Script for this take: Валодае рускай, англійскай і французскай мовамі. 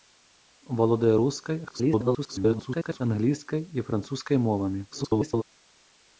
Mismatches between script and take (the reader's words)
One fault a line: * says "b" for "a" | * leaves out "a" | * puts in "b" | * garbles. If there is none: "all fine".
* garbles
* garbles